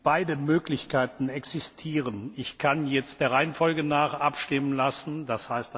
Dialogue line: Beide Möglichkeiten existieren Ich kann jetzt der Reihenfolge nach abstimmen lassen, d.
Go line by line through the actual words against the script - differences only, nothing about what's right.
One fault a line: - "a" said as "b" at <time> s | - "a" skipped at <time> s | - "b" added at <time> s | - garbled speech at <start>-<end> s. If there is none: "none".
none